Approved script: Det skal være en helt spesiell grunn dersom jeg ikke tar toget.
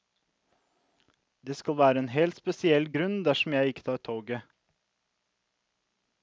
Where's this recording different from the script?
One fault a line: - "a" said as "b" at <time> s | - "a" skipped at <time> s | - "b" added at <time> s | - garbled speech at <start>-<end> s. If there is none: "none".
none